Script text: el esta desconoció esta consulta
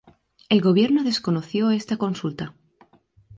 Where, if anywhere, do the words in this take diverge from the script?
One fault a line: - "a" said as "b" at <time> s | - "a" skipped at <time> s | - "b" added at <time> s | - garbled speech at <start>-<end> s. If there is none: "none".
- "esta" said as "gobierno" at 0.6 s